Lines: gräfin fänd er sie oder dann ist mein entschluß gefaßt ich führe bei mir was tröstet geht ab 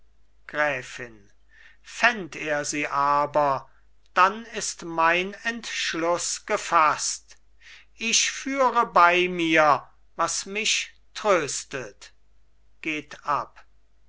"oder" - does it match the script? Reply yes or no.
no